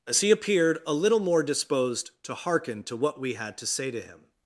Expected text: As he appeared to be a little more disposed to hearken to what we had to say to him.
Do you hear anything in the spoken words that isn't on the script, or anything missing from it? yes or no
yes